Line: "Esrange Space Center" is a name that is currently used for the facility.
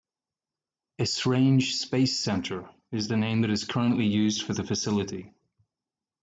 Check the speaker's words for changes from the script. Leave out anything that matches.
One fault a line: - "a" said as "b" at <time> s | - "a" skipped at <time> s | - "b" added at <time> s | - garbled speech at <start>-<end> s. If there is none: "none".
- "a" said as "the" at 3.1 s